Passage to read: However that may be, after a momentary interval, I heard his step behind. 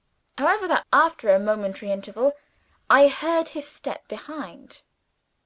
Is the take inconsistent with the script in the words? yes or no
yes